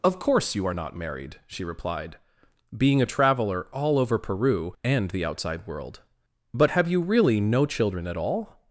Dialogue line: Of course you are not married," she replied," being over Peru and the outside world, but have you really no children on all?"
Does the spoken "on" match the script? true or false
false